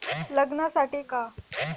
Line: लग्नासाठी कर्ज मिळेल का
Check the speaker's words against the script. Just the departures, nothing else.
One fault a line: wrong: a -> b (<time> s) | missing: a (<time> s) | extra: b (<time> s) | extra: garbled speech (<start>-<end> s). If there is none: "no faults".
missing: कर्ज मिळेल (1.0 s)